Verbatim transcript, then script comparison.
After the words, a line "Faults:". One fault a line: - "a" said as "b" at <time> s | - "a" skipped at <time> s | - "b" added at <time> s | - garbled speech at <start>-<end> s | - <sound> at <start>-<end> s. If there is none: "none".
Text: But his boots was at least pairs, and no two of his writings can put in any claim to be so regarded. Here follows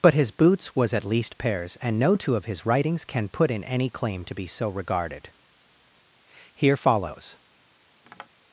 But his boots was at least pairs, and no two of his writings can put in any claim to be so regarded. Here follows
Faults:
- tap at 8.0-8.3 s